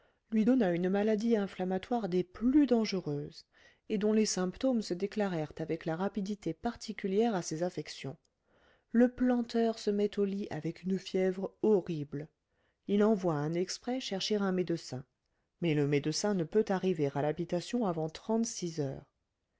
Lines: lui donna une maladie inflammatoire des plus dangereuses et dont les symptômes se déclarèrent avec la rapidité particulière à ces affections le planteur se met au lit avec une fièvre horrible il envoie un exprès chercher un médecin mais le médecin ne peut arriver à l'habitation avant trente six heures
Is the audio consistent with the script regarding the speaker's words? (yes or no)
yes